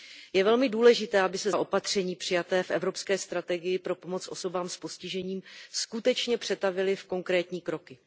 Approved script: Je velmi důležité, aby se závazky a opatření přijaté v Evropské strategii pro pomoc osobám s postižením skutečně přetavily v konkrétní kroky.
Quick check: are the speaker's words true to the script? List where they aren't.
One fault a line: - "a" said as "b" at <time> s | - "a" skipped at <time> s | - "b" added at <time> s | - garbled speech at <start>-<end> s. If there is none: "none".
- "závazky" skipped at 1.5 s